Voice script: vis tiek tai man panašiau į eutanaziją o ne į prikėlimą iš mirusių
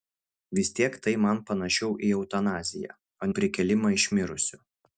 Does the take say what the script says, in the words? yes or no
no